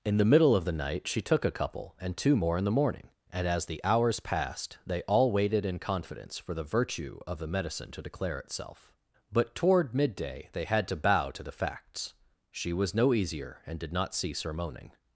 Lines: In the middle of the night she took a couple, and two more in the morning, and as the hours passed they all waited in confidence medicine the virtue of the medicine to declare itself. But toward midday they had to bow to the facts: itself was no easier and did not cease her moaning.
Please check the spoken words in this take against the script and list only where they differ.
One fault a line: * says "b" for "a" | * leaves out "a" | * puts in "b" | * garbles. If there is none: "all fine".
* says "for" for "medicine"
* says "she" for "itself"